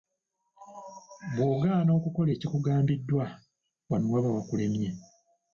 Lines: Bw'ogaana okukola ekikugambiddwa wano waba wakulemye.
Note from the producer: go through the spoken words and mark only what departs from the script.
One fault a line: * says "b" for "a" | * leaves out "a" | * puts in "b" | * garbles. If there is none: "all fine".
all fine